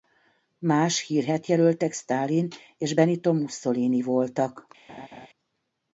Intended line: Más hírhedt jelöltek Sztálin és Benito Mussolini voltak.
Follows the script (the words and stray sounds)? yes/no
no